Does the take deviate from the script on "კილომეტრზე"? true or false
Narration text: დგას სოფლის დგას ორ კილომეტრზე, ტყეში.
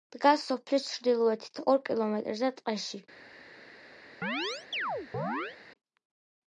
false